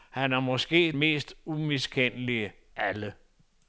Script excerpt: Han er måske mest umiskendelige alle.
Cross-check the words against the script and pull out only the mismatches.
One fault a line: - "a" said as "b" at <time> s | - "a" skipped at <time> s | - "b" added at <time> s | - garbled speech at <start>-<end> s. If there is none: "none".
none